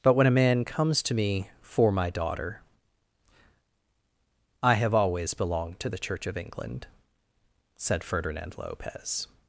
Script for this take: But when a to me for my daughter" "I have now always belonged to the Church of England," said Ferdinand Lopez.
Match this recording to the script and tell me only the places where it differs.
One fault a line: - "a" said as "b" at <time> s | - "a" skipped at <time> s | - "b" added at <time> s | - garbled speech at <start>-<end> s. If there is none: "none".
- "man comes" added at 0.3 s
- "now" skipped at 4.9 s